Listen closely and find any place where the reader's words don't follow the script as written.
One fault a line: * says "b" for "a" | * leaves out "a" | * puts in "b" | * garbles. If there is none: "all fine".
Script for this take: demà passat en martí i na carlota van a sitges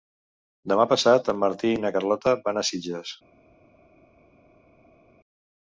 all fine